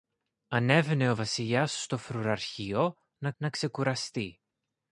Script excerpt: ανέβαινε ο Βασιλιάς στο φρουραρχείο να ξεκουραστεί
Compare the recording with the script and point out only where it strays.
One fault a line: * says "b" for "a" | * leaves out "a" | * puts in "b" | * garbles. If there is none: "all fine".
* puts in "να"